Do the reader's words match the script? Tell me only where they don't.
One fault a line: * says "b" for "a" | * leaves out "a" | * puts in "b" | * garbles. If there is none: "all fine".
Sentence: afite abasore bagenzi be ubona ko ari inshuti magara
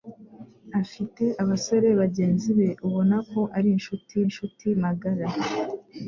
* puts in "inshuti"